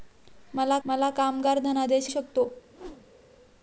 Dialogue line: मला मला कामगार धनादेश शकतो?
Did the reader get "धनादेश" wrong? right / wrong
right